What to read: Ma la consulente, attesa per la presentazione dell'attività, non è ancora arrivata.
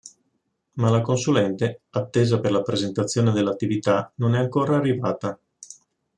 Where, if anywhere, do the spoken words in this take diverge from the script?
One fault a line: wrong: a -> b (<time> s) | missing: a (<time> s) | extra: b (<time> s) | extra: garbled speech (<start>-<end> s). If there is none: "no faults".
no faults